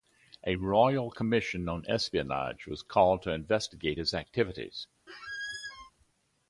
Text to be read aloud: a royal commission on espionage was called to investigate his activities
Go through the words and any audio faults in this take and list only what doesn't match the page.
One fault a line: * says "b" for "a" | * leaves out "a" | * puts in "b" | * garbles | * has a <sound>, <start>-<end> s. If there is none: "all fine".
* has a squeak, 5.1-5.9 s